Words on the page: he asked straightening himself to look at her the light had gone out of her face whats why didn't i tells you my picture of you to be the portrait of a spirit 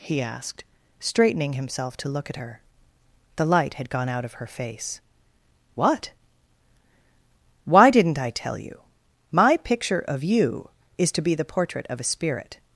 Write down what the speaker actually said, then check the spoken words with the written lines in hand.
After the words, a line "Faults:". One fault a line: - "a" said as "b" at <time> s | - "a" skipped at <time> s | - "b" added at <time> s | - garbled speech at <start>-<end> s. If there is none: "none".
he asked straightening himself to look at her the light had gone out of her face what why didn't i tell you my picture of you is to be the portrait of a spirit
Faults:
- "whats" said as "what" at 5.8 s
- "tells" said as "tell" at 8.3 s
- "is" added at 11.0 s